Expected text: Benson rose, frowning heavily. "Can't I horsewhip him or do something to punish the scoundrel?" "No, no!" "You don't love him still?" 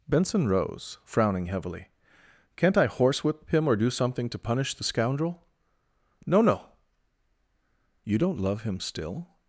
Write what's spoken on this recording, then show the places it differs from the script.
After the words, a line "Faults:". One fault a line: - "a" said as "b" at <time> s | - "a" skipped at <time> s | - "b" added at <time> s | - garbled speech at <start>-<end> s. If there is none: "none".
Benson rose, frowning heavily. "Can't I horsewhip him or do something to punish the scoundrel?" "No, no!" "You don't love him still?"
Faults:
none